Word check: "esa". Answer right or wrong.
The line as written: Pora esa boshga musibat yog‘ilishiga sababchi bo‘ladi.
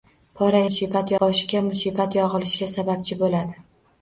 wrong